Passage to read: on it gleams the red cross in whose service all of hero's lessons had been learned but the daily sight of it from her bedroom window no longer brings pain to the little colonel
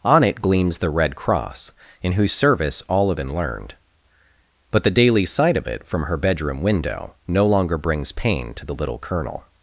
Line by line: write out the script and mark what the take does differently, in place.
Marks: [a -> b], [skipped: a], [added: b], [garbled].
on it gleams the red cross in whose service all of [skipped: hero's lessons had] been learned but the daily sight of it from her bedroom window no longer brings pain to the little colonel